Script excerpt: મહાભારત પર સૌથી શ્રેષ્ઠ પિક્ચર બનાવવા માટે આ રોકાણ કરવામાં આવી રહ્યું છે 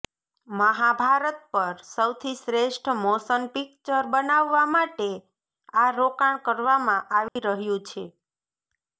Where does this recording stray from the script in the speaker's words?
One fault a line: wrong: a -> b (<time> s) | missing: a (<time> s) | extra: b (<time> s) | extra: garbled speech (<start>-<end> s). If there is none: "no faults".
extra: મોશન (3.0 s)